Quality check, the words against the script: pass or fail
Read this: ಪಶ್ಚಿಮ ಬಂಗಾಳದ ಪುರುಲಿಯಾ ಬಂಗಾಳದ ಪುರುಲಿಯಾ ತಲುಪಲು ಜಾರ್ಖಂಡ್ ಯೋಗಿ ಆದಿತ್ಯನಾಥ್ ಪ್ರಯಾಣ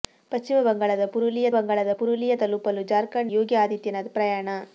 pass